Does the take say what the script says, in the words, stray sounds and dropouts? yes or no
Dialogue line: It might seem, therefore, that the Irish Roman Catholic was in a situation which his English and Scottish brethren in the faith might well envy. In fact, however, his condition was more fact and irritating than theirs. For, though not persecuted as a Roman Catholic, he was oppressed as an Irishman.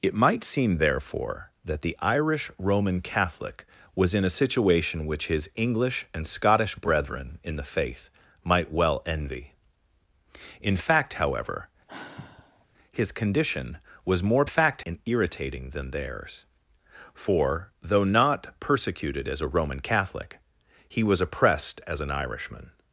no